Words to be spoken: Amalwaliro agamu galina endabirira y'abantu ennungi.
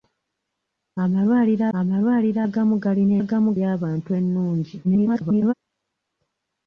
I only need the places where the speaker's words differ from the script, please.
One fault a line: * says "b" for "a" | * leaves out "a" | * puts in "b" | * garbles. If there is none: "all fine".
* puts in "amalwaliro"
* says "agamu" for "endabirira"
* garbles